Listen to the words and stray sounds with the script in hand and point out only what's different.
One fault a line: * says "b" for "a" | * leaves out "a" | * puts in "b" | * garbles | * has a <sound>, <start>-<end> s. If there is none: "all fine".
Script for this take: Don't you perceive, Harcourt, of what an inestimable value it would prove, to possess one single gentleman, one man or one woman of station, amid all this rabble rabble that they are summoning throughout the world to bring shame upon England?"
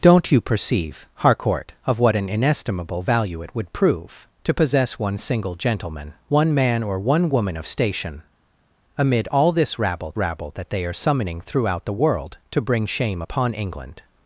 all fine